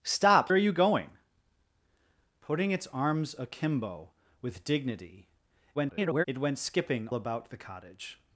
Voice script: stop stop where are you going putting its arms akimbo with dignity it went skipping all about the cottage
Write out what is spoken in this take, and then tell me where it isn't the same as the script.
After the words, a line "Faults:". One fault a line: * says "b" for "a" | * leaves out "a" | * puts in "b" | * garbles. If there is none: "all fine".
stop are you going putting its arms akimbo with dignity [garbled] it went skipping about the cottage
Faults:
* leaves out "stop where"
* garbles
* leaves out "all"